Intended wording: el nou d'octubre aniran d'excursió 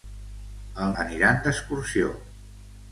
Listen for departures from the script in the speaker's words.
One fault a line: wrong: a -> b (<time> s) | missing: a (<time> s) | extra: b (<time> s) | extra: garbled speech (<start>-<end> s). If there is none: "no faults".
missing: nou d'octubre (0.9 s)